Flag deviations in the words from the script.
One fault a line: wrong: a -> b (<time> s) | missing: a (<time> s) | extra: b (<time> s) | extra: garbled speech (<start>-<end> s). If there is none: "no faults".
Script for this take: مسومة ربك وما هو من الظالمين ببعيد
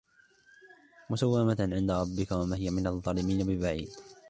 extra: عند (1.6 s)
wrong: هو -> هي (2.5 s)